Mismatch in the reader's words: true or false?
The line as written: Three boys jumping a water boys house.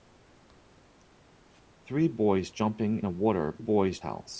false